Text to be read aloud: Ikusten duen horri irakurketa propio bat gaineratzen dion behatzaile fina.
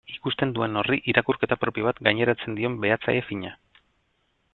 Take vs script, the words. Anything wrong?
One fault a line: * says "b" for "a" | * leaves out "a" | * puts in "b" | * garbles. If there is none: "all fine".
all fine